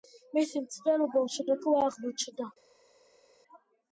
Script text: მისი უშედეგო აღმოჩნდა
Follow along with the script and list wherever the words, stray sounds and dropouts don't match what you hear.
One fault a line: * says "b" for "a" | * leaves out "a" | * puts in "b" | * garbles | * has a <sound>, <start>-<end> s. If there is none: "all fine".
* puts in "მცდელობა"